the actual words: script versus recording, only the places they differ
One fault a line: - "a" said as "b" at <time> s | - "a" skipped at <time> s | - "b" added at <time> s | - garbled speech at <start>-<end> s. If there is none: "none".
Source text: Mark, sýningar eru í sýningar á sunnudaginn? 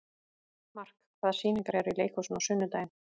- "hvaða" added at 1.2 s
- "sýningar" said as "leikhúsinu" at 2.0 s